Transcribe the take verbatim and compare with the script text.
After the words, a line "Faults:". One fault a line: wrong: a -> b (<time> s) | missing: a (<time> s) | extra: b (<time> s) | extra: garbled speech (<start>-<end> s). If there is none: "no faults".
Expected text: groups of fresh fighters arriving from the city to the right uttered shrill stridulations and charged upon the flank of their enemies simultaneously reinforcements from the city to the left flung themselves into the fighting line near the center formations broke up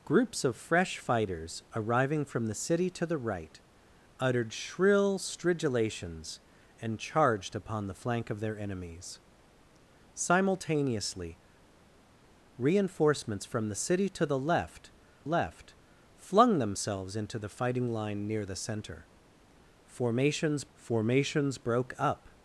groups of fresh fighters arriving from the city to the right uttered shrill stridulations and charged upon the flank of their enemies simultaneously reinforcements from the city to the left left flung themselves into the fighting line near the center formations formations broke up
Faults:
extra: left (15.2 s)
extra: formations (20.7 s)